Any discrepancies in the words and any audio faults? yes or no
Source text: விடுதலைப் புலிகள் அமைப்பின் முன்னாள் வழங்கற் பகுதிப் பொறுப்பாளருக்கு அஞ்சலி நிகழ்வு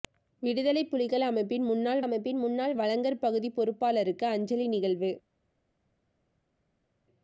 yes